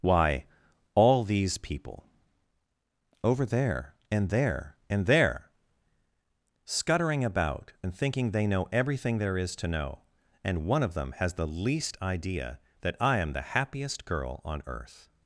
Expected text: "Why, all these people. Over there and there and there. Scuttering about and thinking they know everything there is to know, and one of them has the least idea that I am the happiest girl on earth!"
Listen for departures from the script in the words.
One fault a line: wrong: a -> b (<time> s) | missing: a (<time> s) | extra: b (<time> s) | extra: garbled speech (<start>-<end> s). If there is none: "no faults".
no faults